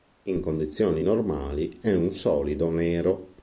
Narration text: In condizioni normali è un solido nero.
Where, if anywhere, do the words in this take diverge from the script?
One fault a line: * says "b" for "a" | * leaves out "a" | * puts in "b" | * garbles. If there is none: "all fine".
all fine